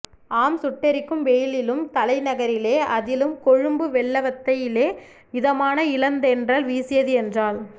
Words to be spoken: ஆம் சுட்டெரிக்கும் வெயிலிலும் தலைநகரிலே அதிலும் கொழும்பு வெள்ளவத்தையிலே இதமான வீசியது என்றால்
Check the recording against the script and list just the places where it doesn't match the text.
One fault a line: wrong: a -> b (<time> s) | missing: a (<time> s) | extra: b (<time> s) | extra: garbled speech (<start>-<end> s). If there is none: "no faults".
extra: இளந்தென்றல் (6.0 s)